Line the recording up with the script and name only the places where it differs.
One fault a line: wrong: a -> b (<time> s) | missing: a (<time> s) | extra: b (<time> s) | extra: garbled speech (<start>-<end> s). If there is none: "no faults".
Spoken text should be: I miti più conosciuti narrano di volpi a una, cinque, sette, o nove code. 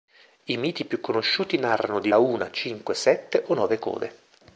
missing: volpi (2.1 s)